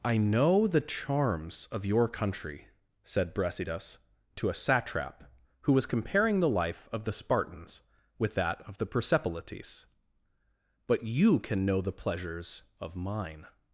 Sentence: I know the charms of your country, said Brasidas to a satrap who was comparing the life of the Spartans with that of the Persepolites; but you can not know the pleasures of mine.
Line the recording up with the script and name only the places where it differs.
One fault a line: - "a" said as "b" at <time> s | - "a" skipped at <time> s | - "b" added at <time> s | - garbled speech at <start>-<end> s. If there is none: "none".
- "not" skipped at 11.7 s